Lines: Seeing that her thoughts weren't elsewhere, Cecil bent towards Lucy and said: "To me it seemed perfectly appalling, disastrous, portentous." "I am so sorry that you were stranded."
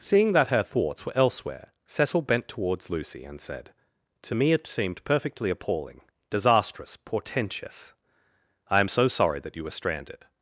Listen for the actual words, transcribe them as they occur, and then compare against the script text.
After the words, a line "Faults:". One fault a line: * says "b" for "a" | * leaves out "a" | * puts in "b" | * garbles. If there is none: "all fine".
Seeing that her thoughts were elsewhere, Cecil bent towards Lucy and said: "To me it seemed perfectly appalling, disastrous, portentous." "I am so sorry that you were stranded."
Faults:
* says "were" for "weren't"